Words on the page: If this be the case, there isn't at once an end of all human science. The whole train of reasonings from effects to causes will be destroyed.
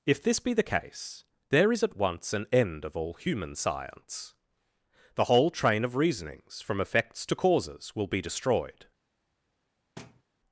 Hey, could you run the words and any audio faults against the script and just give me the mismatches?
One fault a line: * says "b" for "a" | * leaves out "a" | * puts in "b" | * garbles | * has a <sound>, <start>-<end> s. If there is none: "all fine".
* says "is" for "isn't"
* has a thud, 10.0-10.2 s